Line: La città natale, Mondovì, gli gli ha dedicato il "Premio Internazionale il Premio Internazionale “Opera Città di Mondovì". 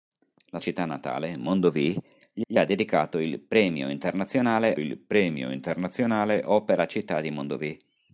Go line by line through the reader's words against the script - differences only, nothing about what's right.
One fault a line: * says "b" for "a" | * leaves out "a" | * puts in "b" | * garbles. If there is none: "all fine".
all fine